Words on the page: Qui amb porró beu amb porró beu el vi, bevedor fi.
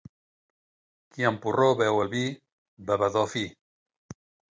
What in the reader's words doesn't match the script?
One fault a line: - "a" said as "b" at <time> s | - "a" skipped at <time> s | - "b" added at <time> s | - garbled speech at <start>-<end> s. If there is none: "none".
- "amb porró beu" skipped at 2.0 s